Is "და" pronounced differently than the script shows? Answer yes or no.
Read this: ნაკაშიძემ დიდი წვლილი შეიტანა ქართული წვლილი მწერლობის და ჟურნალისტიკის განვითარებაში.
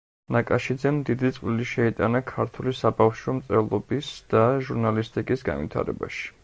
no